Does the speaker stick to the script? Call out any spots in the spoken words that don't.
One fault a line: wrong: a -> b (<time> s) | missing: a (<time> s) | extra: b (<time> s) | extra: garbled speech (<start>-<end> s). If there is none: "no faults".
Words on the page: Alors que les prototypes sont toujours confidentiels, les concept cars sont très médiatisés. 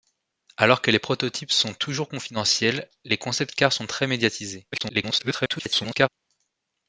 extra: garbled speech (4.7-6.1 s)